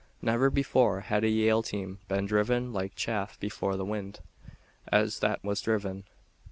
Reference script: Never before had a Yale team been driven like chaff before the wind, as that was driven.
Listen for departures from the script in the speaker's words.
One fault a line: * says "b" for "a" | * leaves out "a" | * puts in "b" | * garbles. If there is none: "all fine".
all fine